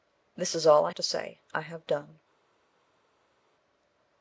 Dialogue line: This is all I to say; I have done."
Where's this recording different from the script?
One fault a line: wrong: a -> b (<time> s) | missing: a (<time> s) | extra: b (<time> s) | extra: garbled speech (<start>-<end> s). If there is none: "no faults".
no faults